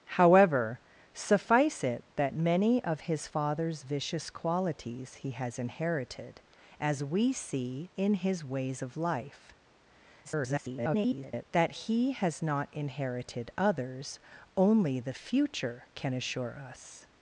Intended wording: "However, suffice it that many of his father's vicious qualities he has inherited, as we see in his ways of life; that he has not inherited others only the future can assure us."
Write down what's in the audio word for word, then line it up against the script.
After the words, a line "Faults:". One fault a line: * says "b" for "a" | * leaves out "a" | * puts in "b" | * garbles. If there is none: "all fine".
"However, suffice it that many of his father's vicious qualities he has inherited, as we see in his ways of life; [garbled] that he has not inherited others only the future can assure us."
Faults:
* garbles